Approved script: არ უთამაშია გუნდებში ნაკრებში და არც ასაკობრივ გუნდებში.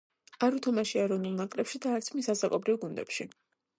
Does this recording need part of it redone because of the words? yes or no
yes